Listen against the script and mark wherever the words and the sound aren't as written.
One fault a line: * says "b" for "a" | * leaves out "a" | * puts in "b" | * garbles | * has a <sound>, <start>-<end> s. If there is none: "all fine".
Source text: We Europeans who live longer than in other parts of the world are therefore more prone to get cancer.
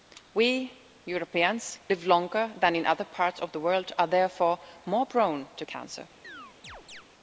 * leaves out "who"
* leaves out "get"
* has a chirp, 6.2-7.0 s